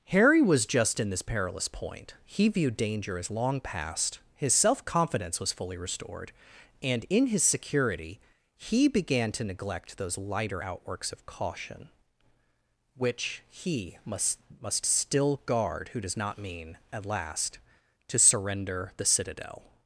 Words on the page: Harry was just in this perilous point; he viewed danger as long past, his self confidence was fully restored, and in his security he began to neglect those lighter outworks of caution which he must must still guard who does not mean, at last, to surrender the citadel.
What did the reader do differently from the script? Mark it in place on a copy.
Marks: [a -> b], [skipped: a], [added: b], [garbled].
Harry was just in this perilous point; he viewed danger as long past, his self confidence was fully restored, and in his security he began to neglect those lighter outworks of caution which he must must still guard who does not mean, at last, to surrender the citadel.